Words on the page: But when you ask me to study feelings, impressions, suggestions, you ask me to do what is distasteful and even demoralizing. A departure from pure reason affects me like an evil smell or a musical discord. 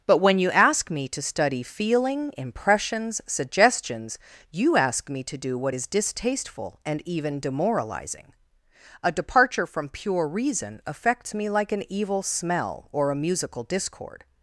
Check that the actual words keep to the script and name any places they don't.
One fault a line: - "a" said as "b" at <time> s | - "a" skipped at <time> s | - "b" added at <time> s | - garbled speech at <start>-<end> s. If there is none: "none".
- "feelings" said as "feeling" at 1.6 s